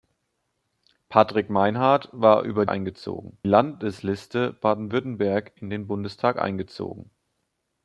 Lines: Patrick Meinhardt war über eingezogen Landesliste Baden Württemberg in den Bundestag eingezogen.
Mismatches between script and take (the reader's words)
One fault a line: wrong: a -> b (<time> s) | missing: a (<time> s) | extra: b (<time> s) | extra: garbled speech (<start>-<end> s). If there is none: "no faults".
no faults